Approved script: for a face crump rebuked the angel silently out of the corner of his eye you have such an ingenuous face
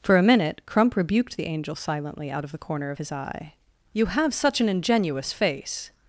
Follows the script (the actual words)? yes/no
no